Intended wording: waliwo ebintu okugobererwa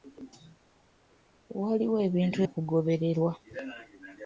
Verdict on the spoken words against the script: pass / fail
pass